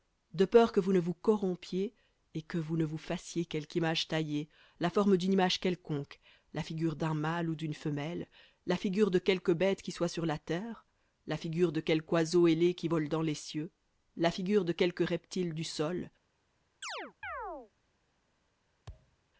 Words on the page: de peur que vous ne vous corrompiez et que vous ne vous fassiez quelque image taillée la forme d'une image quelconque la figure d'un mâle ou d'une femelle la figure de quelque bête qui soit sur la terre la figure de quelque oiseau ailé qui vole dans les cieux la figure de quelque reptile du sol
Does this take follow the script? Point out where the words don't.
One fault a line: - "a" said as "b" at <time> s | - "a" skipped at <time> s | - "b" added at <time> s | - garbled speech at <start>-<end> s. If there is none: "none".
none